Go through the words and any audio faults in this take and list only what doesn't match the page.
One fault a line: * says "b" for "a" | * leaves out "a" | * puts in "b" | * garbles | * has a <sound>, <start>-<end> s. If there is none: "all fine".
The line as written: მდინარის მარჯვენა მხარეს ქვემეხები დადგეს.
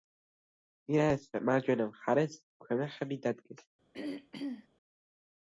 * has a throat clearing, 3.9-4.7 s